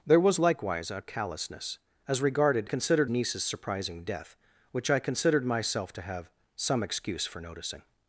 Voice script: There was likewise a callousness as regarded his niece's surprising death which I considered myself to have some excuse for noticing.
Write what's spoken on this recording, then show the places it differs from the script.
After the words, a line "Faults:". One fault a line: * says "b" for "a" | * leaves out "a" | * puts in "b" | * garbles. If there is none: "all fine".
There was likewise a callousness as regarded considered niece's surprising death which I considered myself to have some excuse for noticing.
Faults:
* says "considered" for "his"